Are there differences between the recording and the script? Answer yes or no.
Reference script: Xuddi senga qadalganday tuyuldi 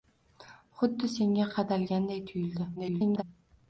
yes